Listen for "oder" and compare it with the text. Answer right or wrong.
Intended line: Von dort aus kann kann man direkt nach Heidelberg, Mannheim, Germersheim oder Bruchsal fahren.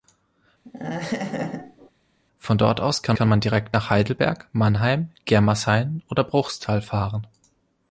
right